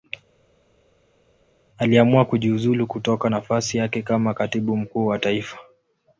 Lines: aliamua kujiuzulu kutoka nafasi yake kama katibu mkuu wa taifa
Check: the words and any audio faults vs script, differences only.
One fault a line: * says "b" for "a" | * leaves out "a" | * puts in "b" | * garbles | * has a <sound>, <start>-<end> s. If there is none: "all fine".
all fine